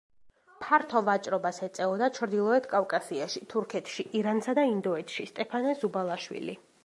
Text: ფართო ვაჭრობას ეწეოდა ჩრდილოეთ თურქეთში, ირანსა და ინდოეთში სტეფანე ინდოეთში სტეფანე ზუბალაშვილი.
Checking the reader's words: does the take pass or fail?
fail